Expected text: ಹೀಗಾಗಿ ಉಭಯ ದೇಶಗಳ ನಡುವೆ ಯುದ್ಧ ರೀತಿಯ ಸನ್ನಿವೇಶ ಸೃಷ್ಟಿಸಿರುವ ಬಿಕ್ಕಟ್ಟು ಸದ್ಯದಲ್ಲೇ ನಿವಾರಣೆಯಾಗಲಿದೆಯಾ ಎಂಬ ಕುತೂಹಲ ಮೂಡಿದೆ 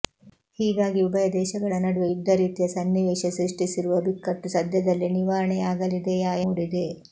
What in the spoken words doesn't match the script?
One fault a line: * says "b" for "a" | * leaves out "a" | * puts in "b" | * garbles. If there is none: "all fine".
* leaves out "ಎಂಬ ಕುತೂಹಲ"